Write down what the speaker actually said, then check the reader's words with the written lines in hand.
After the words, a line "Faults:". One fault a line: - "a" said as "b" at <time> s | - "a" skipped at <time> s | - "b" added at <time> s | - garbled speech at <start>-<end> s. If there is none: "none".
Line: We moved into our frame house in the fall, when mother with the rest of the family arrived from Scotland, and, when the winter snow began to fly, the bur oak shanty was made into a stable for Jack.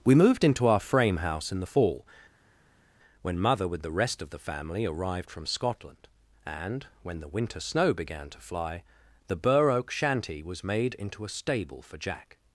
We moved into our frame house in the fall, when mother with the rest of the family arrived from Scotland, and, when the winter snow began to fly, the bur oak shanty was made into a stable for Jack.
Faults:
none